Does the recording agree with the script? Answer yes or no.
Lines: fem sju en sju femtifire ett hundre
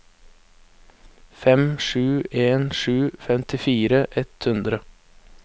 yes